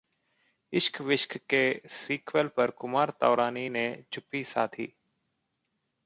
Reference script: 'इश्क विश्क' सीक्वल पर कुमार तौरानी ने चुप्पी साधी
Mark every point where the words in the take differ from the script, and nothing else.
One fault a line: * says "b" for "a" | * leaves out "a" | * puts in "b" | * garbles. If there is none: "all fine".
* puts in "के"